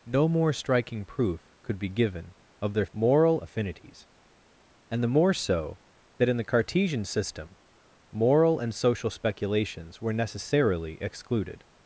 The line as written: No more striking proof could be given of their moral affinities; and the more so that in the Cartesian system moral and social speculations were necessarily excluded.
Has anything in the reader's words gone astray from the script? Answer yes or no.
no